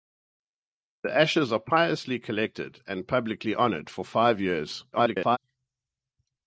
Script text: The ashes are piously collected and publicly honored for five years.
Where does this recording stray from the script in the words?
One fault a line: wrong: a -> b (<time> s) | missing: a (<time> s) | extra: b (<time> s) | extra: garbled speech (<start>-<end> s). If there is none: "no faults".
extra: garbled speech (4.9-5.4 s)